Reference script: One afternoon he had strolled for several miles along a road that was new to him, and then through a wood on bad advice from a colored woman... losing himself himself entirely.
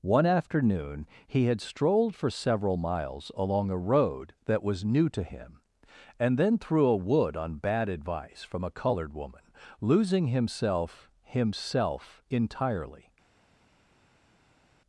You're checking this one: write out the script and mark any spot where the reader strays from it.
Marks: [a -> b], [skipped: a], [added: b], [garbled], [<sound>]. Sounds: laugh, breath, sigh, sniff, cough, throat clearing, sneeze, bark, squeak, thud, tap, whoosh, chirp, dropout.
One afternoon he had strolled for several miles along a road that was new to him, and then through a wood on bad advice from a colored woman... losing himself himself entirely.